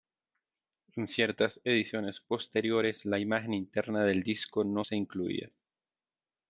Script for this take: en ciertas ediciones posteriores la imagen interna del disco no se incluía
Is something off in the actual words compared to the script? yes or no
no